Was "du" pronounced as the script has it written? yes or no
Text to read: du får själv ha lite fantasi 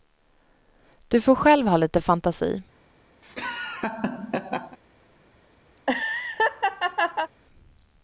yes